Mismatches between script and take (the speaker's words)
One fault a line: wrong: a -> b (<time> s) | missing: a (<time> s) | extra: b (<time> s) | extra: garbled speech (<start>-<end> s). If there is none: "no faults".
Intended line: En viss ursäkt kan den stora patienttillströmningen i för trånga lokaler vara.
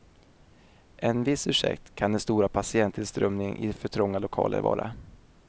no faults